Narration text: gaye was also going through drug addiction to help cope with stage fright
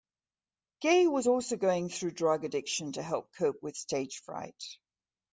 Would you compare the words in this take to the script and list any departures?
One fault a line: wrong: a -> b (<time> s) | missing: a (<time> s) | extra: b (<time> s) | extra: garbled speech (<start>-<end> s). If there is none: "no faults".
no faults